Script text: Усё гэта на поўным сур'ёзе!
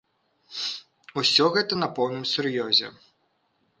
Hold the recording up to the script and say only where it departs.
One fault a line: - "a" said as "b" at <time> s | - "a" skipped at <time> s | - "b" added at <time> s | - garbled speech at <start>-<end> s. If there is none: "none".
none